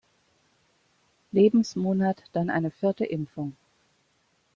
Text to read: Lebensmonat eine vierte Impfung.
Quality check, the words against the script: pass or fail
fail